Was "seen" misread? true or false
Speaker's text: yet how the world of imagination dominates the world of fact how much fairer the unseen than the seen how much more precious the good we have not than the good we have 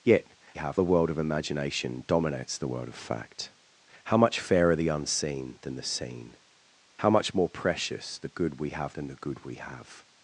false